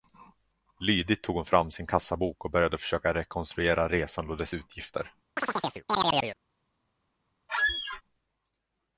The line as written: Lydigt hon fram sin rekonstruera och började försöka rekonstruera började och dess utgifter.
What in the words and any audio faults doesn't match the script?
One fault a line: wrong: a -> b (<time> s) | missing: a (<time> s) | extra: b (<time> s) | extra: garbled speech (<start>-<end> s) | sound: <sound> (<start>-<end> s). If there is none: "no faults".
extra: tog (1.2 s)
wrong: rekonstruera -> kassabok (1.9 s)
wrong: började -> resan (3.9 s)
sound: chirp (5.4-6.4 s)
sound: squeak (7.5-8.0 s)